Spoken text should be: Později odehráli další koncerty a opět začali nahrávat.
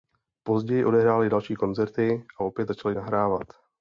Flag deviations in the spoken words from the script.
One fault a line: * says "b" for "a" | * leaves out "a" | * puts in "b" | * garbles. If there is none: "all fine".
all fine